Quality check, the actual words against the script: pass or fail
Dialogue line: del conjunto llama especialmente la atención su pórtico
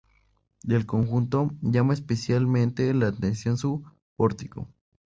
pass